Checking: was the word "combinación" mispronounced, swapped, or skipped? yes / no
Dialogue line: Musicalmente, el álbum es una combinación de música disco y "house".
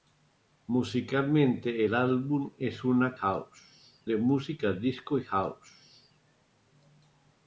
yes